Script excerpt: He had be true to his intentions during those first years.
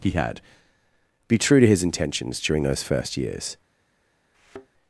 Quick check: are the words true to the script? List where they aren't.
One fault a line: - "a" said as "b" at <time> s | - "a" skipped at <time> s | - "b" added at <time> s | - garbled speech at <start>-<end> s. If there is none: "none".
none